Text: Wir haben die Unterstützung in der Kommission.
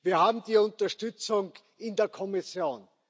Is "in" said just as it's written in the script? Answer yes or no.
yes